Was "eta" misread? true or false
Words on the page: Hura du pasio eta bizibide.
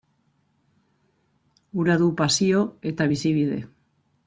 false